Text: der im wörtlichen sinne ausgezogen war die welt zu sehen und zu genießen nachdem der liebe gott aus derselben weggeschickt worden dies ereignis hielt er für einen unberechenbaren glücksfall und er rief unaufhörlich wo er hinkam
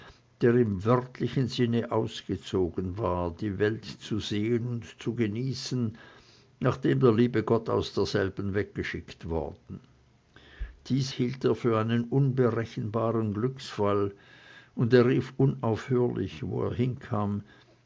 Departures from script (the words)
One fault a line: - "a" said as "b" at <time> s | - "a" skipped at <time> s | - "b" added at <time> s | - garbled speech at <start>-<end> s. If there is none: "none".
- "ereignis" skipped at 11.1 s